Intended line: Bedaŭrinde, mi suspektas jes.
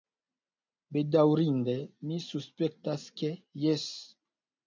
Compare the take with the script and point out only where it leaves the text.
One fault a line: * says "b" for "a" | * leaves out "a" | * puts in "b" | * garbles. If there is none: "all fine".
* puts in "ke"